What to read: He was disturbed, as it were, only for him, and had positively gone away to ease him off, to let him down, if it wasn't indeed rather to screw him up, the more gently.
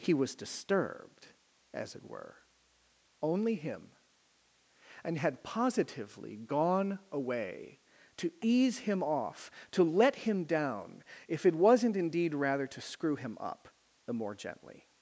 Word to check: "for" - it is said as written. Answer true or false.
false